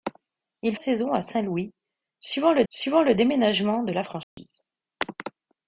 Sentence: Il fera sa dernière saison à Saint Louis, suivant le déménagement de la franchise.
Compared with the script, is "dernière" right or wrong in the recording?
wrong